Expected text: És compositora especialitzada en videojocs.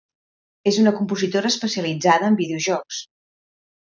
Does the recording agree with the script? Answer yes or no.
no